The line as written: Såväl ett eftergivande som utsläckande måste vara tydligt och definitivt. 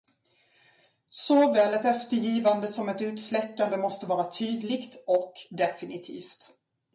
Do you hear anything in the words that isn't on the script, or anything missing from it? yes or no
yes